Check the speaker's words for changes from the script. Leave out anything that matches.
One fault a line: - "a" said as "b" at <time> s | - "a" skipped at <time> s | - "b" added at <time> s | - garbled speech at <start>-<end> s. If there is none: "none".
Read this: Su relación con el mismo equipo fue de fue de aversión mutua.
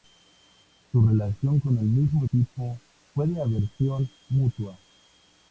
- "fue de" skipped at 3.4 s